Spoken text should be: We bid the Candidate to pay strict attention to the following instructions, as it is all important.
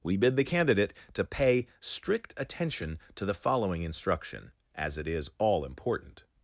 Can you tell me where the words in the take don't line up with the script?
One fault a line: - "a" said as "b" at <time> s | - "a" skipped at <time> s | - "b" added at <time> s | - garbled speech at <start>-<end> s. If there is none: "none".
- "instructions" said as "instruction" at 3.8 s